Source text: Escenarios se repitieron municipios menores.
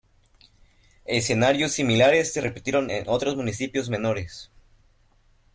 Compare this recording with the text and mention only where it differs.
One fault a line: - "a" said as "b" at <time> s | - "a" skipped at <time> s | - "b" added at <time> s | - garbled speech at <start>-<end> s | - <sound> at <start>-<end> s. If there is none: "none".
- "similares" added at 1.7 s
- "en otros" added at 2.9 s